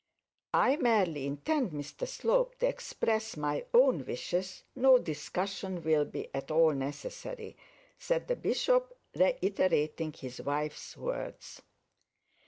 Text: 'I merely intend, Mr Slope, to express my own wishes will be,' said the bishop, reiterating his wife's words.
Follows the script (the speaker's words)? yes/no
no